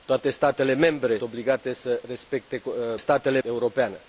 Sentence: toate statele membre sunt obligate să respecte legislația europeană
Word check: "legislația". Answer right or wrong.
wrong